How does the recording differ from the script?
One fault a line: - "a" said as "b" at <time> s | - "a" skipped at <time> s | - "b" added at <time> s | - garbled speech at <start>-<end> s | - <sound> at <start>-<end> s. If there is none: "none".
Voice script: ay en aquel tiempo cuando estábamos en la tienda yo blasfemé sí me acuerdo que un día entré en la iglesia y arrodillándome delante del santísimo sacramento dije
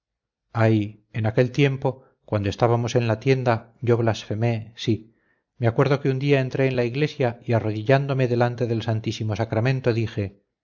none